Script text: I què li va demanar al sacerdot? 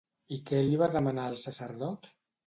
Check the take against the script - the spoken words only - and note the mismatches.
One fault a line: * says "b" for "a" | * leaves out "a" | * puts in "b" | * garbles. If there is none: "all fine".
all fine